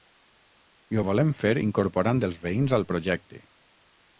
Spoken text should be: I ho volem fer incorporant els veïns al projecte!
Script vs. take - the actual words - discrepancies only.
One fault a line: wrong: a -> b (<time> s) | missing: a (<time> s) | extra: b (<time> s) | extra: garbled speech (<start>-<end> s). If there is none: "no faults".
no faults